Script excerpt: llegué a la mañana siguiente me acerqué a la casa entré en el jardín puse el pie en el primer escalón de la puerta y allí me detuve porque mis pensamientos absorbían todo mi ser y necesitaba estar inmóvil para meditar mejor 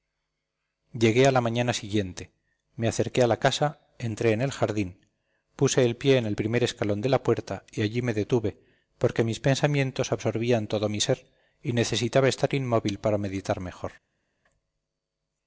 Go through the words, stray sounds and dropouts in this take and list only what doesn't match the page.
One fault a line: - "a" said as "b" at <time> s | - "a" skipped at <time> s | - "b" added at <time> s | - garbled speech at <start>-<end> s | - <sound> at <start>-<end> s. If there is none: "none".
none